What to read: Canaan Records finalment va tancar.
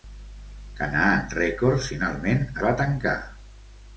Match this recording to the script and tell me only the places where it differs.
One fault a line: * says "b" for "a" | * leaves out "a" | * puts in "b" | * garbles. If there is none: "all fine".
all fine